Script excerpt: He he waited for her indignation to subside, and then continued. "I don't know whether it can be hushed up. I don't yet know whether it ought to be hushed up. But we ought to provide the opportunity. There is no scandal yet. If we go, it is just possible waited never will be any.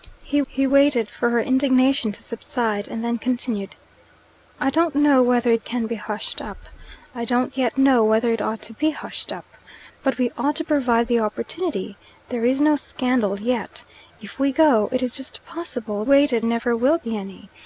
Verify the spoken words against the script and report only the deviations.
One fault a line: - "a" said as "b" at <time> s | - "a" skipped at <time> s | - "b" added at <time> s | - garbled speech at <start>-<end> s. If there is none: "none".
none